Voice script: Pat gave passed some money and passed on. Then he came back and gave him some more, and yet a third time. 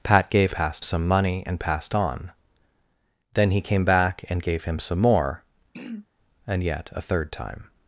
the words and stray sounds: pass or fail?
fail